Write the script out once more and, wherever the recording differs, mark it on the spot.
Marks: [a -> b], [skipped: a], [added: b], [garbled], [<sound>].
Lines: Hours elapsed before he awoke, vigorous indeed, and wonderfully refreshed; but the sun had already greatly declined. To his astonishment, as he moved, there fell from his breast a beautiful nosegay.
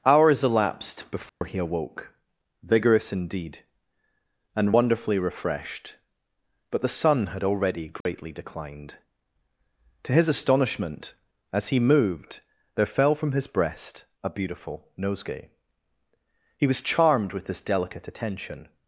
Hours elapsed before [dropout] he awoke, vigorous indeed, and wonderfully refreshed; but the sun had already greatly [dropout] declined. To his astonishment, as he moved, there fell from his breast a beautiful nosegay. [added: He was charmed with this delicate attention]